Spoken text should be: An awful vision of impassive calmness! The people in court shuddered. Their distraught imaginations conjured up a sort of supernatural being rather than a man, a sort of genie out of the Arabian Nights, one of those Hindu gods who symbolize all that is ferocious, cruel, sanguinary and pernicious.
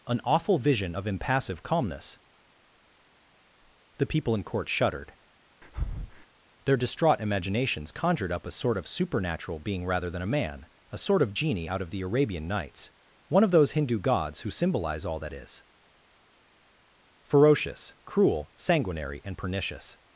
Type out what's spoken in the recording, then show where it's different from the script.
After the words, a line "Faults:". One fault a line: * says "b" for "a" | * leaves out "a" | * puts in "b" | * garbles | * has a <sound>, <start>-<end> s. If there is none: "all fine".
An awful vision of impassive calmness! The people in court shuddered. Their distraught imaginations conjured up a sort of supernatural being rather than a man, a sort of genie out of the Arabian Nights, one of those Hindu gods who symbolize all that is ferocious, cruel, sanguinary and pernicious.
Faults:
* has a breath, 5.6-6.3 s